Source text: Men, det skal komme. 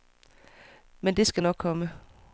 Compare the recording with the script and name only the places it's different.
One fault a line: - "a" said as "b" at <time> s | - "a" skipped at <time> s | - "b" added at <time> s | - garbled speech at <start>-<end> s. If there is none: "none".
- "nok" added at 1.4 s